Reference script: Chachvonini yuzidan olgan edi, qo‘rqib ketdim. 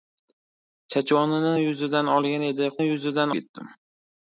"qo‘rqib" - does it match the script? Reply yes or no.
no